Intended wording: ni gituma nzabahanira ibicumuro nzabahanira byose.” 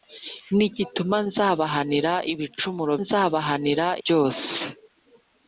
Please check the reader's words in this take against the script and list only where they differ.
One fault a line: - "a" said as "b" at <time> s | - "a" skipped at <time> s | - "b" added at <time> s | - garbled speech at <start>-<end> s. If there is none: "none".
none